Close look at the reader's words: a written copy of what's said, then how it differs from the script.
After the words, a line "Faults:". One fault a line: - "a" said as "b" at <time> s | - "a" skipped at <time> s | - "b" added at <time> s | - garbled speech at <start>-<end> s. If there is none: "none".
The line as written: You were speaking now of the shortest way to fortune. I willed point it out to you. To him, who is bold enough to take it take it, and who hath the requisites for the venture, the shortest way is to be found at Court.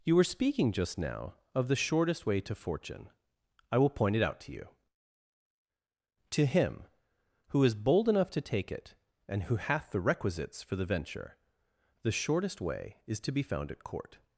You were speaking just now of the shortest way to fortune. I will point it out to you. To him, who is bold enough to take it, and who hath the requisites for the venture, the shortest way is to be found at Court.
Faults:
- "just" added at 0.7 s
- "willed" said as "will" at 3.8 s
- "take it" skipped at 8.9 s